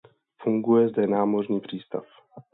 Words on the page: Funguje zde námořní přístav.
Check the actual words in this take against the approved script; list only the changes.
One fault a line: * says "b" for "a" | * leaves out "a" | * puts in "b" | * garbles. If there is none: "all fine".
all fine